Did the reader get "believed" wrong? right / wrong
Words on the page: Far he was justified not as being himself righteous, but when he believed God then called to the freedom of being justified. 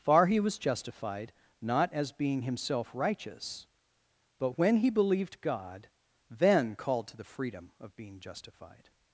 right